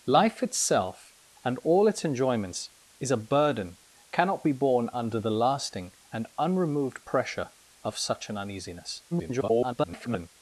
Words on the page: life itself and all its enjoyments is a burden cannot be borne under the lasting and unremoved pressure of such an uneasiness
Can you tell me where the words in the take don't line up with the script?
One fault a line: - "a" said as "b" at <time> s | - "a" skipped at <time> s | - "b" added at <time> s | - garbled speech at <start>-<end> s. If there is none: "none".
- garbled speech at 9.1-10.3 s